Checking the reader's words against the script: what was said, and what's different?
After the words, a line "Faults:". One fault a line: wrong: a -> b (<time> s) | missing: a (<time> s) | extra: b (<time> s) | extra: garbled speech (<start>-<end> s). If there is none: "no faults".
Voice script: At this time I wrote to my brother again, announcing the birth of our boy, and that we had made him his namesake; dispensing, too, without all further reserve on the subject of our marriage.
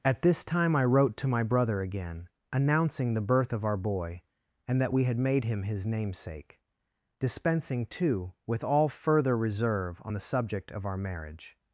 At this time I wrote to my brother again, announcing the birth of our boy, and that we had made him his namesake; dispensing, too, with all further reserve on the subject of our marriage.
Faults:
wrong: without -> with (8.5 s)